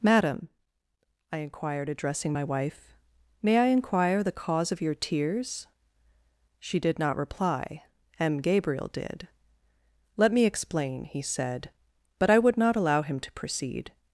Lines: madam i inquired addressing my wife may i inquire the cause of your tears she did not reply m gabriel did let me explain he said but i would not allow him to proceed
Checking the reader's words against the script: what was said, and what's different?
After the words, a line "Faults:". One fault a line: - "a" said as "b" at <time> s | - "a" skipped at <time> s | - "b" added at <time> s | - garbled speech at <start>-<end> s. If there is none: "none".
madam i inquired addressing my wife may i inquire the cause of your tears she did not reply m gabriel did let me explain he said but i would not allow him to proceed
Faults:
none